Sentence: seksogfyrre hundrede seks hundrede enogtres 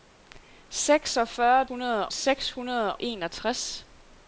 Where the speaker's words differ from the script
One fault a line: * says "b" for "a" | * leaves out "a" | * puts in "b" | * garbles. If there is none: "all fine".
all fine